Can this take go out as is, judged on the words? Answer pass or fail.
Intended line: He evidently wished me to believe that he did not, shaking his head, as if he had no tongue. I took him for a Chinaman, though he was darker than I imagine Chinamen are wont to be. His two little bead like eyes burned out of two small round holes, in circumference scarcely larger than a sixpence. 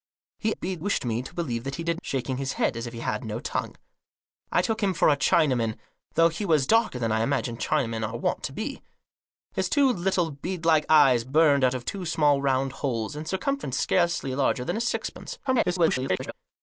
fail